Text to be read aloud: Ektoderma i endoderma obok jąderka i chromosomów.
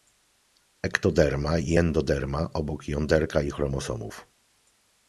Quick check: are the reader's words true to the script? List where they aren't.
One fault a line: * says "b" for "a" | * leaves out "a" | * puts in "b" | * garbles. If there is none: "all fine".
all fine